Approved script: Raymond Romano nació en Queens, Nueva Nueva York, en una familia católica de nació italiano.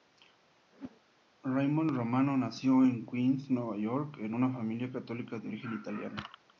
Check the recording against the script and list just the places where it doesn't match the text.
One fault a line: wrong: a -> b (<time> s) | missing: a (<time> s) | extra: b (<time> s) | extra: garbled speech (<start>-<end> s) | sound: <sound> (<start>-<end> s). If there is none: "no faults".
sound: whoosh (0.7-1.0 s)
missing: Nueva (3.8 s)
wrong: nació -> origen (5.5 s)